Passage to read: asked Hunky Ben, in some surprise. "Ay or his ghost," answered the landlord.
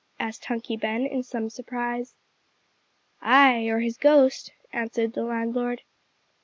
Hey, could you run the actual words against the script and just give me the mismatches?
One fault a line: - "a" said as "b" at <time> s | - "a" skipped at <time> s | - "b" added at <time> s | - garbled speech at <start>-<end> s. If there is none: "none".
none